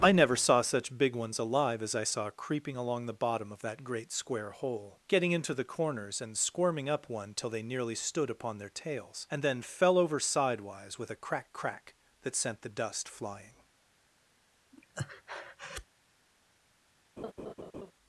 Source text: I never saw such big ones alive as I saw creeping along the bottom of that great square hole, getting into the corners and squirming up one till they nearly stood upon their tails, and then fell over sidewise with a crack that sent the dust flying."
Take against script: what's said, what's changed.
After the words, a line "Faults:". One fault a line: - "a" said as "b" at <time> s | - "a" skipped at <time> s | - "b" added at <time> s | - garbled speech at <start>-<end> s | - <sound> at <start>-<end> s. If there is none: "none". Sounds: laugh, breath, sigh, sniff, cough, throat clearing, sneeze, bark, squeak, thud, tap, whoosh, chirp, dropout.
I never saw such big ones alive as I saw creeping along the bottom of that great square hole, getting into the corners and squirming up one till they nearly stood upon their tails, and then fell over sidewise with a crack crack that sent the dust flying."
Faults:
- "crack" added at 11.5 s
- breath at 14.7-15.9 s
- laugh at 17.2-17.9 s